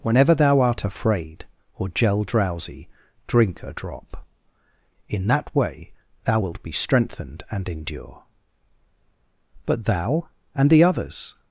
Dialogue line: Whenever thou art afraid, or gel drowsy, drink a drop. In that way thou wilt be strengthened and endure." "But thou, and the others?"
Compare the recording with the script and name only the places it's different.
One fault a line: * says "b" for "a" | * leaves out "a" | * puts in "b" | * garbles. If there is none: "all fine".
all fine